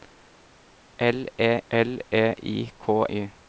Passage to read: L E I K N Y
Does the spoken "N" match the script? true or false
false